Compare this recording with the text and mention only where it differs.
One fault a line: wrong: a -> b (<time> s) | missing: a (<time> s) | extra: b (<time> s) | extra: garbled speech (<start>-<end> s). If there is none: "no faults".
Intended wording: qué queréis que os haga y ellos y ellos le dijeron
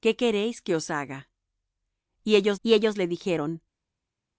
no faults